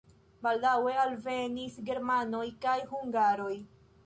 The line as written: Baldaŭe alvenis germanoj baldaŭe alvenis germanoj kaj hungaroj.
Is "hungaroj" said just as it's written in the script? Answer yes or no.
yes